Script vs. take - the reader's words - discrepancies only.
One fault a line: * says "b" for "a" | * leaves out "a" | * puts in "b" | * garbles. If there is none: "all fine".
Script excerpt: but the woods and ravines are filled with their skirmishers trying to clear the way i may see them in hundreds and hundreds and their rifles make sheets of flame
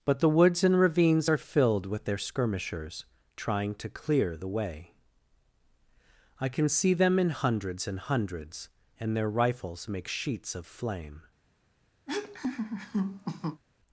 * says "can" for "may"